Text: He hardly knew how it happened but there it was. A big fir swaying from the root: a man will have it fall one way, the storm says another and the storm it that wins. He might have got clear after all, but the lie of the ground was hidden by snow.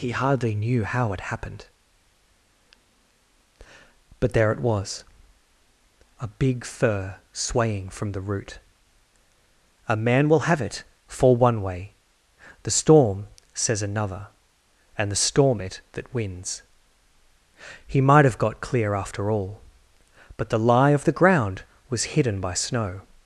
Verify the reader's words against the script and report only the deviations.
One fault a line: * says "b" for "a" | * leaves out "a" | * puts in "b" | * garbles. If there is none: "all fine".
all fine